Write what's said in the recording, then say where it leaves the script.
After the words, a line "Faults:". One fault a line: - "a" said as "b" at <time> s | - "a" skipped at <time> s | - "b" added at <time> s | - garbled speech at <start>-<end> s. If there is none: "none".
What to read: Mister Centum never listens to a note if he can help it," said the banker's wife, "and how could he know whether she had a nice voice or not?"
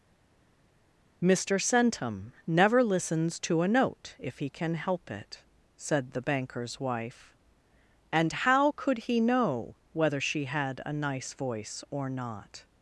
Mister Centum never listens to a note if he can help it," said the banker's wife, "and how could he know whether she had a nice voice or not?"
Faults:
none